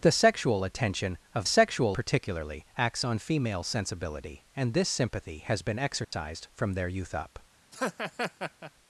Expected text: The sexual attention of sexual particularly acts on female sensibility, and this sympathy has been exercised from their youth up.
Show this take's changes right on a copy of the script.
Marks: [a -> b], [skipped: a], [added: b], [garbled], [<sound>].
The sexual attention of sexual particularly acts on female sensibility, and this sympathy has been exercised [dropout] from their youth up. [laugh]